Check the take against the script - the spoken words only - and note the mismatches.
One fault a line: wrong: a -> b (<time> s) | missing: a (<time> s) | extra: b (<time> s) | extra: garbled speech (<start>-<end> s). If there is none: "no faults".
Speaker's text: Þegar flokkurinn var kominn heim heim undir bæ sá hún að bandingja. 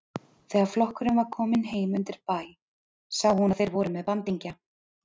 missing: heim (2.0 s)
extra: þeir voru með (3.6 s)